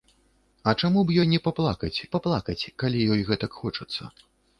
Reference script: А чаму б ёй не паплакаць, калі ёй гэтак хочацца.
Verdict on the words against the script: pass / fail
fail